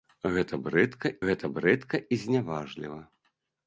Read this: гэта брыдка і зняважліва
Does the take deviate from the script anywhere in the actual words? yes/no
yes